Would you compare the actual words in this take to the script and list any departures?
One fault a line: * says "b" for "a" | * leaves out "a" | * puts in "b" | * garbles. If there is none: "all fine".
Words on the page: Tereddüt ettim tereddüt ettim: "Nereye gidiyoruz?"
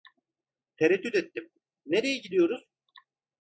* leaves out "tereddüt ettim"